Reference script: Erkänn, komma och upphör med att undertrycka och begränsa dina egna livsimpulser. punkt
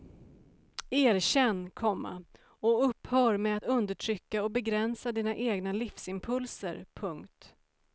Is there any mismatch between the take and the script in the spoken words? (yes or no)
no